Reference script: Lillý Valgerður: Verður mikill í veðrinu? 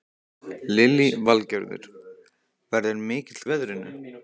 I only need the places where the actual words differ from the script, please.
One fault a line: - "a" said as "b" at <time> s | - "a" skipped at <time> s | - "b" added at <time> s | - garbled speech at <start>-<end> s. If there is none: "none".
none